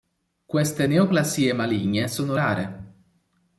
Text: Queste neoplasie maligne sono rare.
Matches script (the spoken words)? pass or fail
pass